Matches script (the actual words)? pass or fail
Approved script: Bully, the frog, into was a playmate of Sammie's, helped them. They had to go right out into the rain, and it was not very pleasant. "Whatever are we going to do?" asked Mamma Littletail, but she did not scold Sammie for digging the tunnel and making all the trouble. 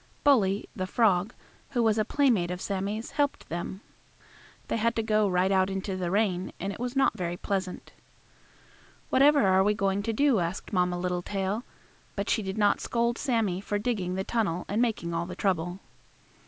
fail